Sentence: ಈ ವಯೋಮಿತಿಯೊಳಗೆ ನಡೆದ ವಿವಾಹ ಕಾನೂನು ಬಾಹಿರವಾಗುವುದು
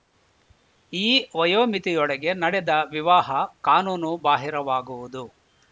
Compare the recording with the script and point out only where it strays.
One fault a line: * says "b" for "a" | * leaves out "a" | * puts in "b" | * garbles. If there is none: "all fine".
all fine